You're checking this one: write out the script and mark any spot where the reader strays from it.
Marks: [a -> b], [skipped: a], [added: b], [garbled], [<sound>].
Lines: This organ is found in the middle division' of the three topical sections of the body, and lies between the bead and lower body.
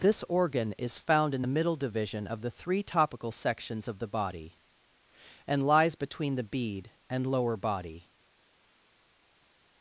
This organ is found in the middle division' of the three topical sections of the body, and lies between the bead and lower body.